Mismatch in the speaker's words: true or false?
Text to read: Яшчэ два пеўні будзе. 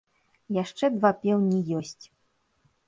true